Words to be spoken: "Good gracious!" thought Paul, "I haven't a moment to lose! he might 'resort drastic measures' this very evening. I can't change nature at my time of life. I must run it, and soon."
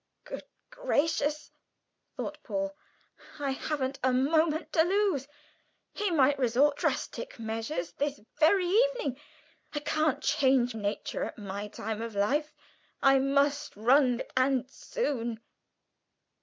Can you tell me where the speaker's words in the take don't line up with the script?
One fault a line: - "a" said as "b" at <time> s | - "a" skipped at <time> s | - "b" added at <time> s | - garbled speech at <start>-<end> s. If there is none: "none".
none